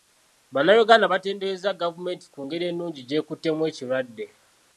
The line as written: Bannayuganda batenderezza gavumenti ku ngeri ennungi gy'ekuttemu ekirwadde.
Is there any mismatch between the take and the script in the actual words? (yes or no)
no